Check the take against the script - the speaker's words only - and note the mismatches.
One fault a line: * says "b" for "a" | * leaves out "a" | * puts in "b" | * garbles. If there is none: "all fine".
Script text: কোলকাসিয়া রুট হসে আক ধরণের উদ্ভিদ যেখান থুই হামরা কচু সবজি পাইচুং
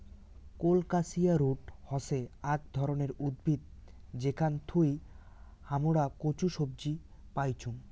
all fine